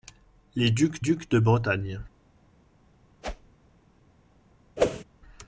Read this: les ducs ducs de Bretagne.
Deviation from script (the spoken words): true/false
false